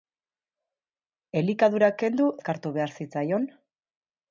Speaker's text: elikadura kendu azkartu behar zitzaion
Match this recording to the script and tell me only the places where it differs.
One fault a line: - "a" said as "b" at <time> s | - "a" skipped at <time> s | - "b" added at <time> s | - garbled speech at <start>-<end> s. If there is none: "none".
none